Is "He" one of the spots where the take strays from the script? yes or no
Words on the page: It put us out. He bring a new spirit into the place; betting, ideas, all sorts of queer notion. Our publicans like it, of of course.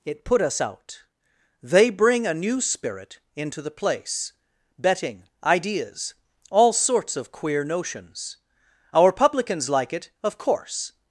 yes